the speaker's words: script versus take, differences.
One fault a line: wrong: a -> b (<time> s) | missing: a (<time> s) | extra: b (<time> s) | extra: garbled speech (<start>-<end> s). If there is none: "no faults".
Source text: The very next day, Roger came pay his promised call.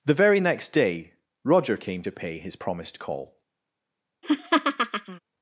extra: to (2.0 s)